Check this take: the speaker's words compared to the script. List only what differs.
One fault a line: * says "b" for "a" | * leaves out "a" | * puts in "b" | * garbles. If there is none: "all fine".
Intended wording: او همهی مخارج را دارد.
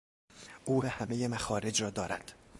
all fine